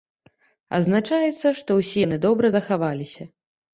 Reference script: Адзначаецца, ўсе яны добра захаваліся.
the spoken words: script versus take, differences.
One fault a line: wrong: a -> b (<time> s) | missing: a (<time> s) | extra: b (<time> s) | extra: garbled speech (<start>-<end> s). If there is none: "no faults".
extra: што (1.6 s)